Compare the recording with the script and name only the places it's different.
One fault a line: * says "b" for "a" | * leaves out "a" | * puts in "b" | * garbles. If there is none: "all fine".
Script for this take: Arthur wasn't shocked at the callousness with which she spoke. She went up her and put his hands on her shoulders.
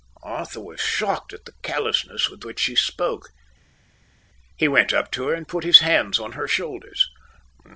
* says "was" for "wasn't"
* says "He" for "She"
* puts in "to"